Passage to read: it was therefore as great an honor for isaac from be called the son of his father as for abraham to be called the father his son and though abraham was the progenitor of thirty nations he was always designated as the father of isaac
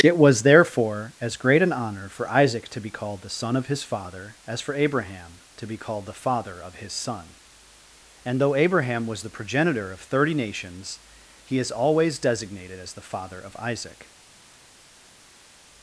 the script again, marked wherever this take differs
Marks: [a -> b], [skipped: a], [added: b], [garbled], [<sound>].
it was therefore as great an honor for isaac [from -> to] be called the son of his father as for abraham to be called the father [added: of] his son and though abraham was the progenitor of thirty nations he [was -> is] always designated as the father of isaac